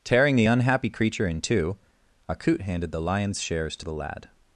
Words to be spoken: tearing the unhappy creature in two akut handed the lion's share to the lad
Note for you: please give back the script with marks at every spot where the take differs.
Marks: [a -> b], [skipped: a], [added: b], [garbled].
tearing the unhappy creature in two akut handed the lion's [share -> shares] to the lad